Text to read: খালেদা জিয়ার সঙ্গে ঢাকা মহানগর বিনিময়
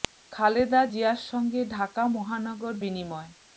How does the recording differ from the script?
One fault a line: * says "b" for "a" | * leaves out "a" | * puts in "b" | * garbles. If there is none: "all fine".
all fine